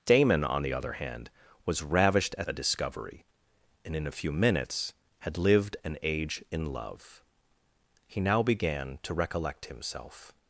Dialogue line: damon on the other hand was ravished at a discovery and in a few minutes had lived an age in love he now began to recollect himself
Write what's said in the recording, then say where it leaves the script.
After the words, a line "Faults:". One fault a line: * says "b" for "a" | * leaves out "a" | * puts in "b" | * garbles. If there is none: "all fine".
damon on the other hand was ravished at a discovery and in a few minutes had lived an age in love he now began to recollect himself
Faults:
all fine